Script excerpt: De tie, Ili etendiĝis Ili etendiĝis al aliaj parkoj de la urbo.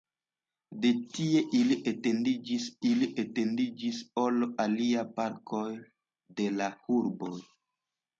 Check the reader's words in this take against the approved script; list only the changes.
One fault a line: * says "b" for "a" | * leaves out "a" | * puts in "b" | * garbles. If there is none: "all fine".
all fine